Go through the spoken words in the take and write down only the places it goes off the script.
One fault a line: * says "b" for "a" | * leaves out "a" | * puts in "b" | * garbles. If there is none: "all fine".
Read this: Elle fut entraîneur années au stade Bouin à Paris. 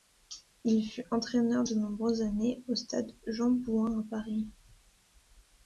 * says "Il" for "Elle"
* puts in "de nombreuses"
* puts in "Jean"